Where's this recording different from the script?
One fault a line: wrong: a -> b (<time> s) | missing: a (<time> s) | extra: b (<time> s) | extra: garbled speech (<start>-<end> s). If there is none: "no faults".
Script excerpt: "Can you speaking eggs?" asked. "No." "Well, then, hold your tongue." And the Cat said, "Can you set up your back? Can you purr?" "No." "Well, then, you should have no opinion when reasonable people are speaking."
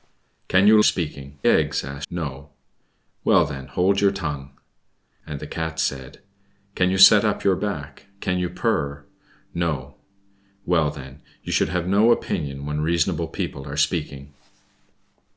no faults